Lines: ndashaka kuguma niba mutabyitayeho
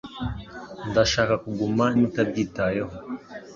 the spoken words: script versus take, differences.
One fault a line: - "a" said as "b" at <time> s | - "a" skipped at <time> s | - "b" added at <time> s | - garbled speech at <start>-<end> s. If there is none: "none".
- "niba" skipped at 1.9 s